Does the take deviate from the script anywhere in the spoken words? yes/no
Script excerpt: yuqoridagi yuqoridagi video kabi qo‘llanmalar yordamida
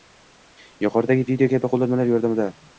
yes